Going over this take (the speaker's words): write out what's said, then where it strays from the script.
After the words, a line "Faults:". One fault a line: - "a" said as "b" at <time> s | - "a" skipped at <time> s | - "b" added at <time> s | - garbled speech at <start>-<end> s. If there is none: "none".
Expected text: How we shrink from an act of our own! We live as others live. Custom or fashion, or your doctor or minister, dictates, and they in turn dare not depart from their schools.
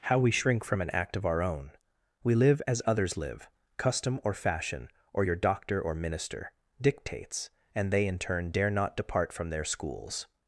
How we shrink from an act of our own! We live as others live. Custom or fashion, or your doctor or minister, dictates, and they in turn dare not depart from their schools.
Faults:
none